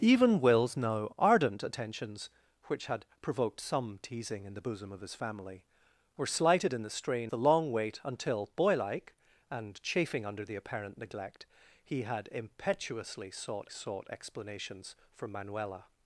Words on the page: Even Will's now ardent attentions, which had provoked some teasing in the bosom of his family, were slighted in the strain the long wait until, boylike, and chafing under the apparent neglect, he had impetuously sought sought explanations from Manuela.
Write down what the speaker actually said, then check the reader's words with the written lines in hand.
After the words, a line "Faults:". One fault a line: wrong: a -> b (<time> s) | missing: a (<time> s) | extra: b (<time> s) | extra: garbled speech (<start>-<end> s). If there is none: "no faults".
Even Will's now ardent attentions, which had provoked some teasing in the bosom of his family, were slighted in the strain the long wait until, boylike, and chafing under the apparent neglect, he had impetuously sought sought explanations from Manuela.
Faults:
no faults